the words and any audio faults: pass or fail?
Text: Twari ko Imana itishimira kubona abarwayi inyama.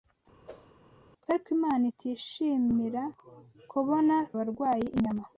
fail